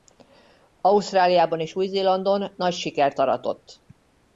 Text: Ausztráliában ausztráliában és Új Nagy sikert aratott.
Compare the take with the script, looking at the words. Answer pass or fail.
fail